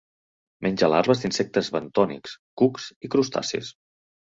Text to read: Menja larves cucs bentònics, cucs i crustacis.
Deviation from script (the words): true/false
true